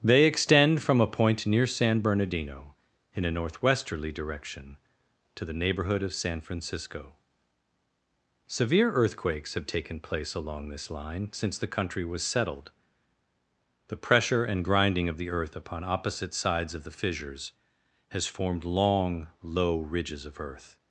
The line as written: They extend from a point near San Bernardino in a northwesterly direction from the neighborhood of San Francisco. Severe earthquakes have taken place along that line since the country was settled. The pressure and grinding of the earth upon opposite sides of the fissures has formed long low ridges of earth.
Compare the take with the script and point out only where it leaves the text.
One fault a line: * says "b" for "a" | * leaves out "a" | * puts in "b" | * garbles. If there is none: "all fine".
* says "to" for "from"
* says "this" for "that"